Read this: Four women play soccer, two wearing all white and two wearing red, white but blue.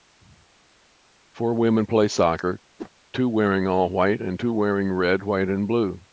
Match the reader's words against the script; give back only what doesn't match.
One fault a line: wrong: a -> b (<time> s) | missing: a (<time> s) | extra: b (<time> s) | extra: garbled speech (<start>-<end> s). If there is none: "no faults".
wrong: but -> and (5.5 s)